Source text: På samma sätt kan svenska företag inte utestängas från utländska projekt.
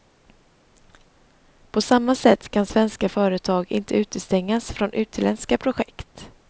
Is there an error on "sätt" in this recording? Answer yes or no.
no